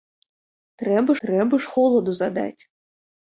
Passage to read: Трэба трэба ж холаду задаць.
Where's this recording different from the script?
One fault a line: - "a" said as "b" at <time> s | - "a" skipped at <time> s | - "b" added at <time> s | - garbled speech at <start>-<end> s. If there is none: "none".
none